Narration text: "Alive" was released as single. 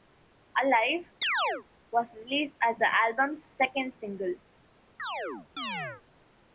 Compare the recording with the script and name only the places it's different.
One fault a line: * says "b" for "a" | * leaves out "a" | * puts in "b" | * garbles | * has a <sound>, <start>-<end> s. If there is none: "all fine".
* has a chirp, 1.2-1.6 s
* puts in "the album's second"
* has a chirp, 5.0-6.0 s